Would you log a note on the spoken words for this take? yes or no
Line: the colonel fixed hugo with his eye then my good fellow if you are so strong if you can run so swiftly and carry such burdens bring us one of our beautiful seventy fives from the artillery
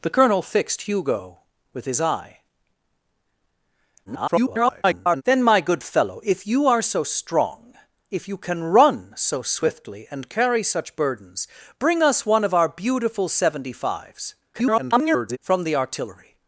yes